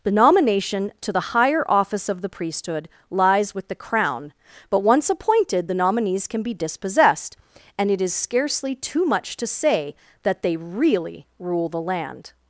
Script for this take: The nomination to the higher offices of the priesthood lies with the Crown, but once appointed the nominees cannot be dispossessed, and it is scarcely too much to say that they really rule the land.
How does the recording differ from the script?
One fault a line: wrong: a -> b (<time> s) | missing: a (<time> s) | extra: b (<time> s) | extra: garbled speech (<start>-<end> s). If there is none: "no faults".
wrong: offices -> office (1.7 s)
wrong: cannot -> can (6.3 s)